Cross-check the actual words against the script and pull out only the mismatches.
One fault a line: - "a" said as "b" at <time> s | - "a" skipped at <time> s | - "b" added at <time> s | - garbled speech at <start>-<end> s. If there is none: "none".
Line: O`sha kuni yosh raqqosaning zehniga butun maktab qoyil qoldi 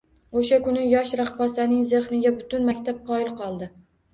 none